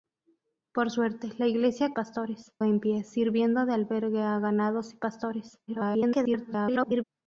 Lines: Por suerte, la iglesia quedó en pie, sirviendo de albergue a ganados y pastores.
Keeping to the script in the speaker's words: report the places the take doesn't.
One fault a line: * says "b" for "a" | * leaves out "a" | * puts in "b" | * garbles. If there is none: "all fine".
* says "pastores" for "quedó"
* garbles